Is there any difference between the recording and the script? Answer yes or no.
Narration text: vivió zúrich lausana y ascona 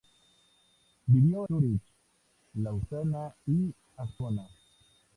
no